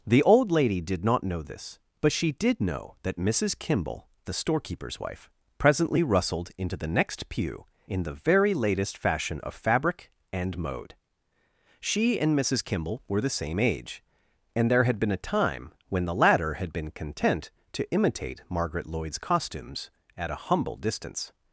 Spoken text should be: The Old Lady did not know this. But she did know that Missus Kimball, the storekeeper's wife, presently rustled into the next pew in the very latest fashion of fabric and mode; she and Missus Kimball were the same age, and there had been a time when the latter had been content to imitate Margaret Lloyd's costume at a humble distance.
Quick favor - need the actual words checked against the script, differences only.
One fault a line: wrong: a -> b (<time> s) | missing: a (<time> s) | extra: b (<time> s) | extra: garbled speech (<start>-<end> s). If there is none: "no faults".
wrong: costume -> costumes (19.2 s)